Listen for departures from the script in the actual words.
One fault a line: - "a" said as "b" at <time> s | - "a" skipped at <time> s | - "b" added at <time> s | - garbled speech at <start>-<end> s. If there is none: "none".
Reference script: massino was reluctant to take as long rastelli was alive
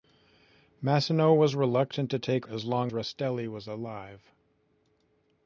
none